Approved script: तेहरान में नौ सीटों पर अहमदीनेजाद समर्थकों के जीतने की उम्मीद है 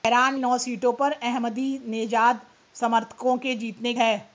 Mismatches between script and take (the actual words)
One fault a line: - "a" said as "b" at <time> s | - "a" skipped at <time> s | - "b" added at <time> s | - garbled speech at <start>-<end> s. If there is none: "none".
- "में" skipped at 0.3 s
- "की उम्मीद" skipped at 3.9 s